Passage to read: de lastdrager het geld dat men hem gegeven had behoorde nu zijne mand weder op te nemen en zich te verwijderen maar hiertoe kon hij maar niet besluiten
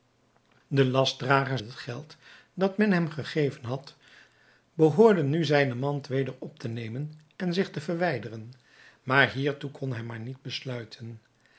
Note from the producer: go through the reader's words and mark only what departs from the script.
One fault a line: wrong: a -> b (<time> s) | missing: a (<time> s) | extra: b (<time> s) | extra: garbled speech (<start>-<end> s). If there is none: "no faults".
no faults